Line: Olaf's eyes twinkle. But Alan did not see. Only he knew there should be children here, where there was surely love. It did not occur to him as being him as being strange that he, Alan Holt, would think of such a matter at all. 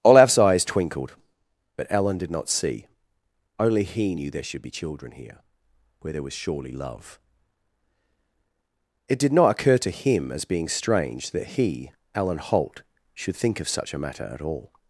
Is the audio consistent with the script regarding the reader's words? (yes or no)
no